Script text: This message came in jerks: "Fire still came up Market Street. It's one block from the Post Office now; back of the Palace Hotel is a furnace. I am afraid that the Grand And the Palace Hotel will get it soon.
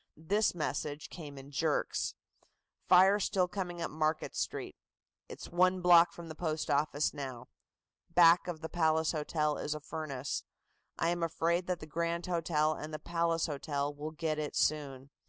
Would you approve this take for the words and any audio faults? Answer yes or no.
no